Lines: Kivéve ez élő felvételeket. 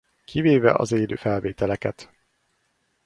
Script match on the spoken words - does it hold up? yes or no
no